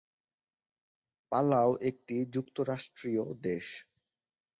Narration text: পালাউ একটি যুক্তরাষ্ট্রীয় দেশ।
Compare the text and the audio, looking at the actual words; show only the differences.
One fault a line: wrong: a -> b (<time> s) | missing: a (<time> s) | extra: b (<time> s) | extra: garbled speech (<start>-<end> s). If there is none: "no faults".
no faults